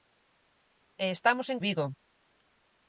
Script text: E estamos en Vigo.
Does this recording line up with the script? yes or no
yes